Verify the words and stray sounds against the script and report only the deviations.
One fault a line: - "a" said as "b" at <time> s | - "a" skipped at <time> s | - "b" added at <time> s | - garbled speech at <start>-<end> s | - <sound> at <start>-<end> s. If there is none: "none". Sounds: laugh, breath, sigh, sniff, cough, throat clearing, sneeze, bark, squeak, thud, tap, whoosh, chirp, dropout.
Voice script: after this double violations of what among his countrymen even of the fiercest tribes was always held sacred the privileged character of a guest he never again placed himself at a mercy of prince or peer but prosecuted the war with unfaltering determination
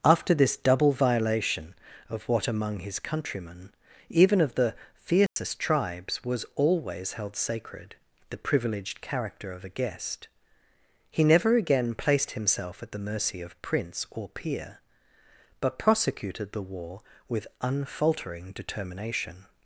- "violations" said as "violation" at 0.9 s
- dropout at 5.3-5.4 s
- "a" said as "the" at 12.9 s